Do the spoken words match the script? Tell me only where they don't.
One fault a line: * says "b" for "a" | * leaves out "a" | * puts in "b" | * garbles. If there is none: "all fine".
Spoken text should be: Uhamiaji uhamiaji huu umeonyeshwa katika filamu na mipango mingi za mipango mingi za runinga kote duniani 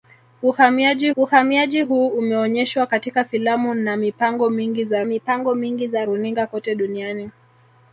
all fine